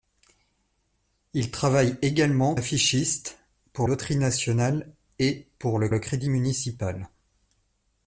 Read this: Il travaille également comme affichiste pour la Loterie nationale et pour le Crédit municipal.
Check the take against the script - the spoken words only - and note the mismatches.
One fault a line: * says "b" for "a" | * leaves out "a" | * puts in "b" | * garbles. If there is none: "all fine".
* leaves out "comme"
* leaves out "la"
* puts in "le"